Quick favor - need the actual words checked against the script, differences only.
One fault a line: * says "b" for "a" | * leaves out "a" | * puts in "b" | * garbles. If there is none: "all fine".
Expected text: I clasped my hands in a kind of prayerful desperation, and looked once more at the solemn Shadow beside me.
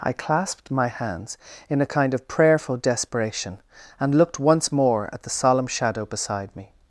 all fine